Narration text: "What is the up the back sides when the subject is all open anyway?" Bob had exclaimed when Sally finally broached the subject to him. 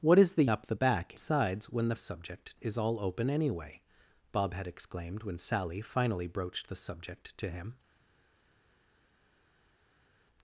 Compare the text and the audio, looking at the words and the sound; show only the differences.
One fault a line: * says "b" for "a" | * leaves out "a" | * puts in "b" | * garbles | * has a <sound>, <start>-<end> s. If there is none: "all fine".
all fine